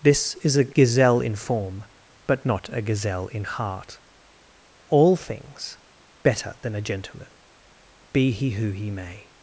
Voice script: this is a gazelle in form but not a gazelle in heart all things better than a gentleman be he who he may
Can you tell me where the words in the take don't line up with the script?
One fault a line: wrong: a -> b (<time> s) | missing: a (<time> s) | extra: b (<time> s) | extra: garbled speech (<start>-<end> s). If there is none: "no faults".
no faults